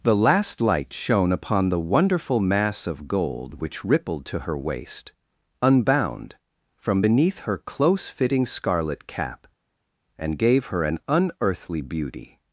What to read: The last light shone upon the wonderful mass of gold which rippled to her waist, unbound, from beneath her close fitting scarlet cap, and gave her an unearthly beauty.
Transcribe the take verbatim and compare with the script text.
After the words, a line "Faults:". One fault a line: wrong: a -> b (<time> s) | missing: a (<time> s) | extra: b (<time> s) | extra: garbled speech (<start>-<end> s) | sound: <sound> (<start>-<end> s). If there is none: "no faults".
The last light shone upon the wonderful mass of gold which rippled to her waist, unbound, from beneath her close fitting scarlet cap, and gave her an unearthly beauty.
Faults:
no faults